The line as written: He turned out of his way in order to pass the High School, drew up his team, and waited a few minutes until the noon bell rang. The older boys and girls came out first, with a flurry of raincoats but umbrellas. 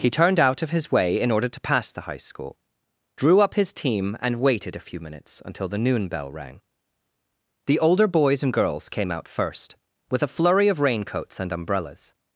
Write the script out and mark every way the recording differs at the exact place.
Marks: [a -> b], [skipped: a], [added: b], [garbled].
He turned out of his way in order to pass the High School, drew up his team, and waited a few minutes until the noon bell rang. The older boys and girls came out first, with a flurry of raincoats [but -> and] umbrellas.